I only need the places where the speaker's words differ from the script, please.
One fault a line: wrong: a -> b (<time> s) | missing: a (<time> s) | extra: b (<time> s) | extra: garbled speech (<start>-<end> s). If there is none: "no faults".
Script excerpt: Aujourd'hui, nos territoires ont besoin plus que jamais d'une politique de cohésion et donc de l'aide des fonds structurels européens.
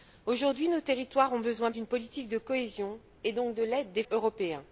missing: plus que jamais (1.7 s)
missing: fonds structurels (4.0 s)